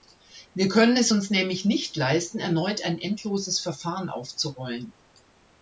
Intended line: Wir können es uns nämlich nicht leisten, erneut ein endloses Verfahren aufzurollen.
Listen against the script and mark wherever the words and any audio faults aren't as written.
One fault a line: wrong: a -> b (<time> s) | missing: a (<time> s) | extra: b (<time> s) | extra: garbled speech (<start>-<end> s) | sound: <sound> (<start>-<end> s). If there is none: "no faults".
no faults